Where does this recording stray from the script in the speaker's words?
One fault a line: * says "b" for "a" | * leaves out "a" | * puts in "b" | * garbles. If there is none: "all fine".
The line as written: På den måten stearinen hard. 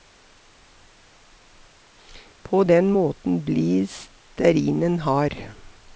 * puts in "blir"